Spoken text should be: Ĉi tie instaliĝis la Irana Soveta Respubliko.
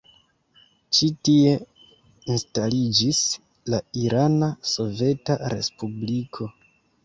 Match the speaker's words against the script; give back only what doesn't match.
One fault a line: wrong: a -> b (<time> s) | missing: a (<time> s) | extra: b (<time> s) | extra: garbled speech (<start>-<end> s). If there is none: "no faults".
no faults